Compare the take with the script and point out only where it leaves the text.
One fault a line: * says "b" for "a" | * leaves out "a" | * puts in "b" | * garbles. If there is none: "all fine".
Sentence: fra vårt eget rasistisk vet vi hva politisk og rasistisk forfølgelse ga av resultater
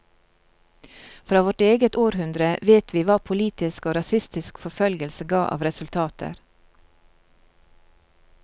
* says "århundre" for "rasistisk"